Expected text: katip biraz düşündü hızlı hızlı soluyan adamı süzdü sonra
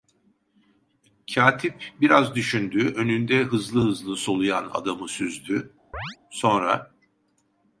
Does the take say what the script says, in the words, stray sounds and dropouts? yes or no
no